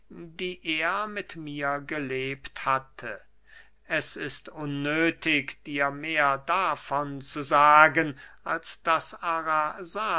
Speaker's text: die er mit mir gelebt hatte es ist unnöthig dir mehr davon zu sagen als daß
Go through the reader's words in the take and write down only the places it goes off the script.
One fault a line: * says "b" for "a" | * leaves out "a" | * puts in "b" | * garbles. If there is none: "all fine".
all fine